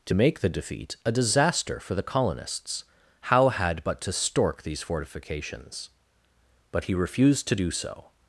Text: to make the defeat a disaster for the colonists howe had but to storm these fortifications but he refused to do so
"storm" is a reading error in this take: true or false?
true